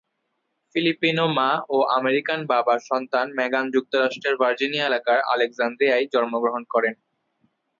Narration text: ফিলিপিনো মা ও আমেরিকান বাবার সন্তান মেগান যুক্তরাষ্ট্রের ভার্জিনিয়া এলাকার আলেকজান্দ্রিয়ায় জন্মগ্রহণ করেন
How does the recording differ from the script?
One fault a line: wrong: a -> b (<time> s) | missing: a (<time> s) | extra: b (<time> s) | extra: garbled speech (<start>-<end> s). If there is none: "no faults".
no faults